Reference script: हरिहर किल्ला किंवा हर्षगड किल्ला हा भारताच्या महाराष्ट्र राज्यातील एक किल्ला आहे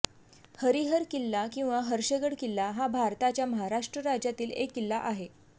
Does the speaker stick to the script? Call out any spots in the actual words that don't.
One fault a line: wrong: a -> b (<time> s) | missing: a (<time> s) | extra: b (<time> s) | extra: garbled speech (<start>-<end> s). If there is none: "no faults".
no faults